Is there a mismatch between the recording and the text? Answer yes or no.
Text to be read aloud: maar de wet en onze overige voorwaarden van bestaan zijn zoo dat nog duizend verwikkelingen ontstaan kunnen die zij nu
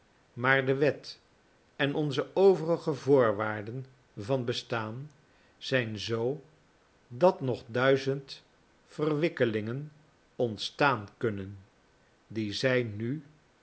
no